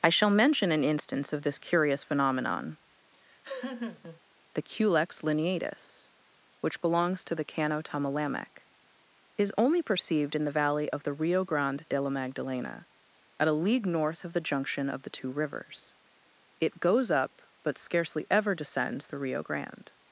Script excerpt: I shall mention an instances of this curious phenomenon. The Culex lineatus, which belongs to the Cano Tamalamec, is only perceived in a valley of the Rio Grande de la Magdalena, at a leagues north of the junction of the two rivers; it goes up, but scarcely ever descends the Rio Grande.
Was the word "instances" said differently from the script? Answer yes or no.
yes